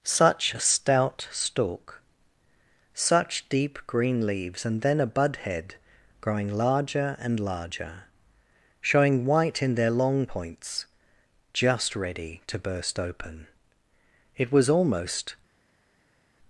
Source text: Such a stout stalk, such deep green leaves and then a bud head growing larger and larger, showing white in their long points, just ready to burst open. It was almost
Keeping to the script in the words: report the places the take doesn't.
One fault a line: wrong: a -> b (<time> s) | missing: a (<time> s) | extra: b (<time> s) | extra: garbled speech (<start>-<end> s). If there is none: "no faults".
no faults